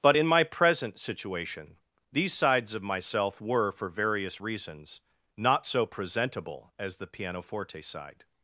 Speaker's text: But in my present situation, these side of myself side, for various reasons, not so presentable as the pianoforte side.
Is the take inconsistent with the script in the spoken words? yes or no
yes